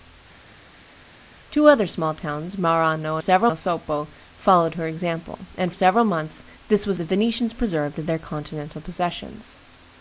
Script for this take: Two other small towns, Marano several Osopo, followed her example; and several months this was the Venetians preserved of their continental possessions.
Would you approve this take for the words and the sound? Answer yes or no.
yes